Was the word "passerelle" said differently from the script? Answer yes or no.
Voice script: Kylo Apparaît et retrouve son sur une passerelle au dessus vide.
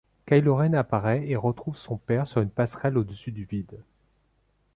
no